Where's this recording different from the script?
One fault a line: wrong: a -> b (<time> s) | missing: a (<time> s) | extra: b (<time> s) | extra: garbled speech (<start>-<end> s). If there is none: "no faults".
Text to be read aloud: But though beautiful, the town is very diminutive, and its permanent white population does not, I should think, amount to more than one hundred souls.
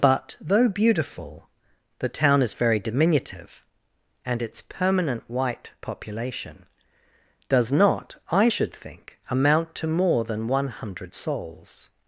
no faults